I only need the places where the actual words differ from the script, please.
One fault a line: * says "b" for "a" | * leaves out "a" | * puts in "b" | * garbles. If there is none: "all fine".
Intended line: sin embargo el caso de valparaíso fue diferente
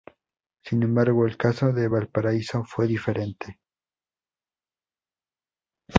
all fine